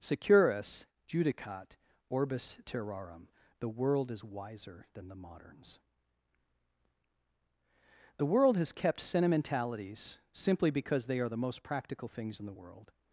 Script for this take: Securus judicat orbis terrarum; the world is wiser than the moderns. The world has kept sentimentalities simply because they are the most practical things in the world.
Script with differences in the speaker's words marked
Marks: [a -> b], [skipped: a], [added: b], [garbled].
Securus judicat orbis terrarum; the world is wiser than the moderns. The world has kept sentimentalities simply because they are the most practical things in the world.